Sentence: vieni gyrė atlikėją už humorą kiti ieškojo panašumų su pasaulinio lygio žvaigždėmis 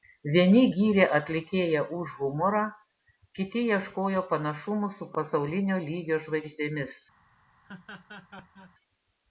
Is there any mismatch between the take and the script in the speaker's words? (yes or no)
no